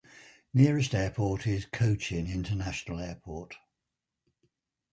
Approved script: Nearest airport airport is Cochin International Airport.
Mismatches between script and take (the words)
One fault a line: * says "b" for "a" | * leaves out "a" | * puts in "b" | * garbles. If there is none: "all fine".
* leaves out "airport"